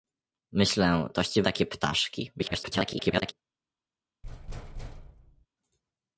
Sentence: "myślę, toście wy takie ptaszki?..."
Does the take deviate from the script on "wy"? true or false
true